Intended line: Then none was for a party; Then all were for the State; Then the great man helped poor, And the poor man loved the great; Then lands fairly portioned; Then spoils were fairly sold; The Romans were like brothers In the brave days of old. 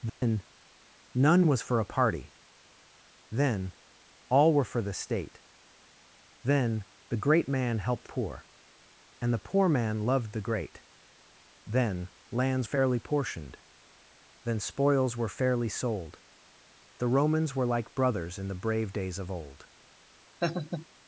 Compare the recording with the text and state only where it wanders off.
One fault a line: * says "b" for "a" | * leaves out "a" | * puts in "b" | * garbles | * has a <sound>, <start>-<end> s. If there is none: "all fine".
* has a dropout, 0.1-0.2 s
* has a laugh, 20.4-20.9 s